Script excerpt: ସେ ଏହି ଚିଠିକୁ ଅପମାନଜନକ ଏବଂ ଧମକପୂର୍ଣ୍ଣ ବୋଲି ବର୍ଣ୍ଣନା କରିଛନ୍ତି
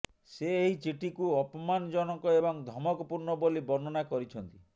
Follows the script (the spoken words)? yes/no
yes